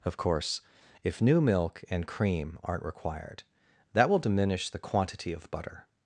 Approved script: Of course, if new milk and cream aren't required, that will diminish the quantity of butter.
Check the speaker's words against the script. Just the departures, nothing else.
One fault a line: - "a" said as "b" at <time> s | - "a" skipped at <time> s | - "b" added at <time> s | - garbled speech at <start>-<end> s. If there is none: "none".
none